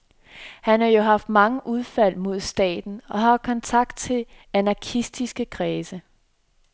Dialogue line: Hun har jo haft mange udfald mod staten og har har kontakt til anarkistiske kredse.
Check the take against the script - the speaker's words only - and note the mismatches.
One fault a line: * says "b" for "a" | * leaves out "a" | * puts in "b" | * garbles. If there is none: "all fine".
* says "Han" for "Hun"
* leaves out "har"